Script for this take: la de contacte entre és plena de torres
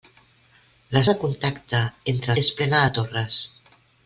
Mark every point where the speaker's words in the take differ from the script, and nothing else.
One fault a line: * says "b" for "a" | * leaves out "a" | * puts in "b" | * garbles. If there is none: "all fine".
all fine